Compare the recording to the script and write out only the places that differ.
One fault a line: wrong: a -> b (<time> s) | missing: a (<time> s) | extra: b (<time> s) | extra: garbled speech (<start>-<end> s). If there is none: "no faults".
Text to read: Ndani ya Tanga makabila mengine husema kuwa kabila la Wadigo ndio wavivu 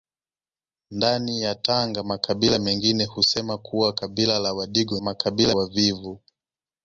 wrong: ndio -> makabila (5.0 s)